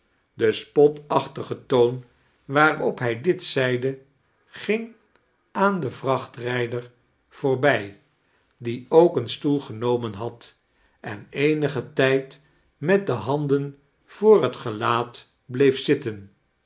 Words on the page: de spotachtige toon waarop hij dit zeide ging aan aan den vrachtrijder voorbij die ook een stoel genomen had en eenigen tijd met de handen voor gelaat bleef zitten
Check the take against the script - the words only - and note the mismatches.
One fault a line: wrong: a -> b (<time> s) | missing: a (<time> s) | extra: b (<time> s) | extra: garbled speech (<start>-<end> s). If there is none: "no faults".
missing: aan (5.8 s)
extra: het (14.4 s)